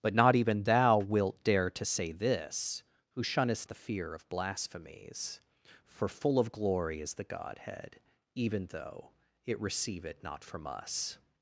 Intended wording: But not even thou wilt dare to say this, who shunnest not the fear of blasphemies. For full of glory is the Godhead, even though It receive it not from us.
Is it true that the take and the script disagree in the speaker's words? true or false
true